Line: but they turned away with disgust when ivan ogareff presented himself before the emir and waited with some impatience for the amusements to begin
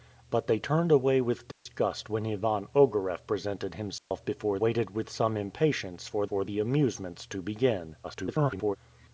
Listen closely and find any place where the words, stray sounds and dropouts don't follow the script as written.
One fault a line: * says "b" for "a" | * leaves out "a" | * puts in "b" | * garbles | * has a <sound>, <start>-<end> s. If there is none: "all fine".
* has a dropout, 1.5-1.7 s
* has a dropout, 4.0-4.1 s
* leaves out "the emir and"
* puts in "for"
* garbles